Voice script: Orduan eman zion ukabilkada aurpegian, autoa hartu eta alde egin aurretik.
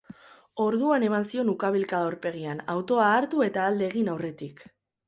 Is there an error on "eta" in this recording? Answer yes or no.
no